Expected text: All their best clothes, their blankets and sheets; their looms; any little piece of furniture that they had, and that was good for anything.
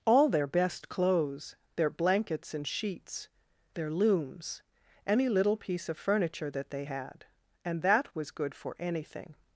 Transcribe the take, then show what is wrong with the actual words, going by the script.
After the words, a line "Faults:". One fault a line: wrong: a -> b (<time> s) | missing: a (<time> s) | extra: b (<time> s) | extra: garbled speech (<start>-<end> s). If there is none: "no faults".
All their best clothes, their blankets and sheets; their looms; any little piece of furniture that they had, and that was good for anything.
Faults:
no faults